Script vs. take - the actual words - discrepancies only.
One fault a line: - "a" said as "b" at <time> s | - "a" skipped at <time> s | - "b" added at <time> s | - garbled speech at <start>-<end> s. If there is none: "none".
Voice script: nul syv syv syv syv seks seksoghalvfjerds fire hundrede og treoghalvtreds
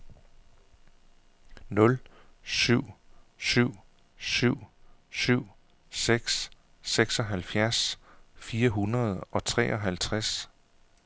none